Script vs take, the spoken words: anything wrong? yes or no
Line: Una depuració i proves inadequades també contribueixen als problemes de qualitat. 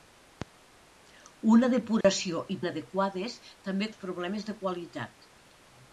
yes